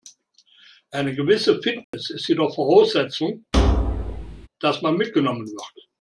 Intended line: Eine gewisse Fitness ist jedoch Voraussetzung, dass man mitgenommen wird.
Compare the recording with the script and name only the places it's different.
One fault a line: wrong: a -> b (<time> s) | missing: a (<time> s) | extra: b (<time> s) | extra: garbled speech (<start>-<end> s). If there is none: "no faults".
no faults